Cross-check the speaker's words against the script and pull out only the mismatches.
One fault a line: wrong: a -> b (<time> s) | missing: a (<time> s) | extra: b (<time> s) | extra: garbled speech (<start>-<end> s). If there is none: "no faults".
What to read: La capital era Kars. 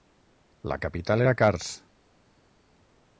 no faults